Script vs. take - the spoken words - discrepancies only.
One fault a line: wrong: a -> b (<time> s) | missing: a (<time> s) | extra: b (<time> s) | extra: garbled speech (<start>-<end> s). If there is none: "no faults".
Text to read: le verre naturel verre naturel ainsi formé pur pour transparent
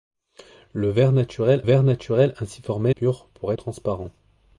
no faults